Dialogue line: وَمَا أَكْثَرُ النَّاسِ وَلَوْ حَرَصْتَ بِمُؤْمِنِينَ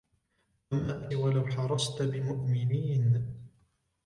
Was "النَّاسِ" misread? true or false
true